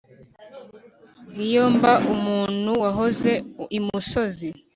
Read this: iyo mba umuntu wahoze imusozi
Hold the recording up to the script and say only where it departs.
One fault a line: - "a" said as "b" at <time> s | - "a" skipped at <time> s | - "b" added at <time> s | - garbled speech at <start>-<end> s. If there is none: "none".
none